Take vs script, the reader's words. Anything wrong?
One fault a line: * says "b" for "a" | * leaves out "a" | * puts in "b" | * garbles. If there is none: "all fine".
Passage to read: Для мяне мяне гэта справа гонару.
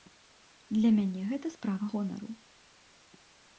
* leaves out "мяне"